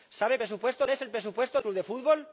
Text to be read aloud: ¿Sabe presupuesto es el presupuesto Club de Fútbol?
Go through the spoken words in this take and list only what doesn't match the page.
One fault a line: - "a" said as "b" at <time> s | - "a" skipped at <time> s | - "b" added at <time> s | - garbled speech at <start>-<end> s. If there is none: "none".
none